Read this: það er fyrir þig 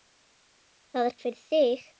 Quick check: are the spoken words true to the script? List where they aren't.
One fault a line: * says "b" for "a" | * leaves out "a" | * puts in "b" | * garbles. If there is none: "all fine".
all fine